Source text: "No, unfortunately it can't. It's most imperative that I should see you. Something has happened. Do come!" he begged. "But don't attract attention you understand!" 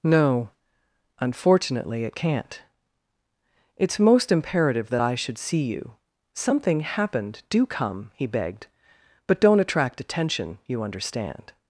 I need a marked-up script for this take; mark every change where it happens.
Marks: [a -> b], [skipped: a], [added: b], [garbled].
"No, unfortunately it can't. It's most imperative that I should see you. Something [skipped: has] happened. Do come!" he begged. "But don't attract attention you understand!"